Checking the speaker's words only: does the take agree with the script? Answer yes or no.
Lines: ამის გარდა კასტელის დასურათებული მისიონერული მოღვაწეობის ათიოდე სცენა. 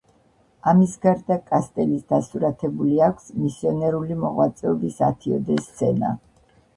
no